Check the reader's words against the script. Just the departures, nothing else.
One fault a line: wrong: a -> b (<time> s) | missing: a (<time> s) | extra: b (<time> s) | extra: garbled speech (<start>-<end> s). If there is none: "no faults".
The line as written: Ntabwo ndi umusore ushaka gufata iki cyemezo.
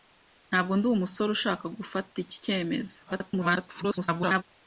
extra: garbled speech (3.1-4.4 s)